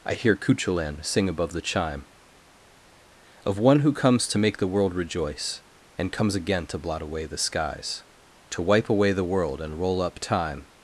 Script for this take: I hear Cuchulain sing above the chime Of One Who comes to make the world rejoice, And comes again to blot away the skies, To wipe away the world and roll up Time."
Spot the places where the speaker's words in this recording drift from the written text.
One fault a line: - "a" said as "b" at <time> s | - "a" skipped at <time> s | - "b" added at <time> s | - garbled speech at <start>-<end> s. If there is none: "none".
none